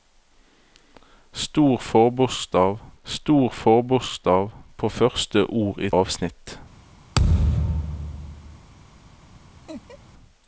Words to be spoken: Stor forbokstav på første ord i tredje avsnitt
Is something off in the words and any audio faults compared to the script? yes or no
yes